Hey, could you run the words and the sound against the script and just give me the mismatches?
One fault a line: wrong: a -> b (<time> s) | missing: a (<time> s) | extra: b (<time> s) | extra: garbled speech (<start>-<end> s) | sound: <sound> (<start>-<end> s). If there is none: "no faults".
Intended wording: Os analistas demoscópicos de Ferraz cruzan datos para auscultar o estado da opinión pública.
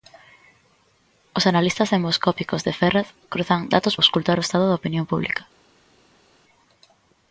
missing: para (4.0 s)